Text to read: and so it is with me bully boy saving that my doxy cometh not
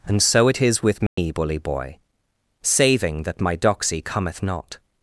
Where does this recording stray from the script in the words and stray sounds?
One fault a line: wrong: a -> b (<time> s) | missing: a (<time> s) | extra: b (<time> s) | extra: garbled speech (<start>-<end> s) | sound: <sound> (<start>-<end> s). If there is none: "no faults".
sound: dropout (1.1-1.2 s)